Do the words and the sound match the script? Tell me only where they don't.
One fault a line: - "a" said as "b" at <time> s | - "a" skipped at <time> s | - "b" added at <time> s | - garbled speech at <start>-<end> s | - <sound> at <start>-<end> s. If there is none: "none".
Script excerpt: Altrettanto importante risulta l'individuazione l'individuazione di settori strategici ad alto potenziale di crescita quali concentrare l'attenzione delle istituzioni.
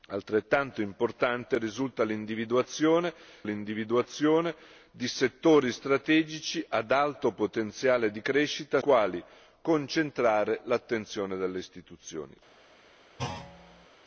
- thud at 13.2-13.9 s